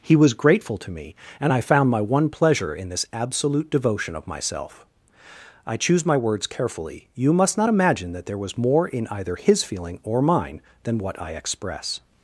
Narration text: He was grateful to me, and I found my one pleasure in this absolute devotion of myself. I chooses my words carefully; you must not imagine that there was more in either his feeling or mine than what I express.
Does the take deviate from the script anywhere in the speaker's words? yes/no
yes